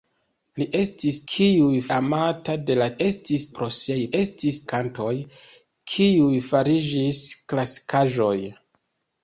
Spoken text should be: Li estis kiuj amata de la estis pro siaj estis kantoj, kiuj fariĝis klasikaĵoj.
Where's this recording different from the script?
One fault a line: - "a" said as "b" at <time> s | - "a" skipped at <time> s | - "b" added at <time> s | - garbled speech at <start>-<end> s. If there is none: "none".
none